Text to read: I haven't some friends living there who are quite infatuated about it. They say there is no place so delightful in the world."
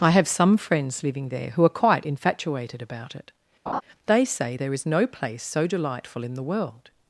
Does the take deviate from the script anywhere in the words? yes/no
yes